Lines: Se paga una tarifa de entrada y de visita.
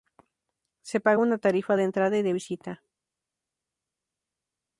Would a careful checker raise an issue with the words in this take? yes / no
no